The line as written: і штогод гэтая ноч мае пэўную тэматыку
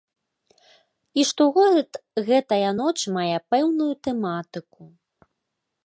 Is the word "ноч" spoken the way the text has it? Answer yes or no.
yes